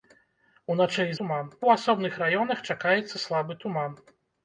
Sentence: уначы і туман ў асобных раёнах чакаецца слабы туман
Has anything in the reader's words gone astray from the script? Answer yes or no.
no